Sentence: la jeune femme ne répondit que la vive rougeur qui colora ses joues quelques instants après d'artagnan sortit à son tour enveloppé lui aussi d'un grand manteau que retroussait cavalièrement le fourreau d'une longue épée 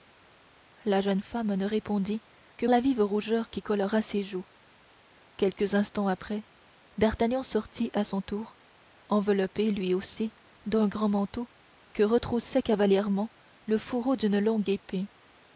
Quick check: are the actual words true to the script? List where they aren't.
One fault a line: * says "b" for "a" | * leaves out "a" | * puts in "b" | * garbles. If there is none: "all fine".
all fine